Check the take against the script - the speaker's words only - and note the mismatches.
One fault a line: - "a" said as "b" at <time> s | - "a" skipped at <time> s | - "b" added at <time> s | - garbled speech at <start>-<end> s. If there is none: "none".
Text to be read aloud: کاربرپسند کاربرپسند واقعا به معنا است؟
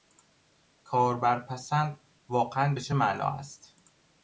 - "کاربرپسند" skipped at 2.0 s
- "چه" added at 2.8 s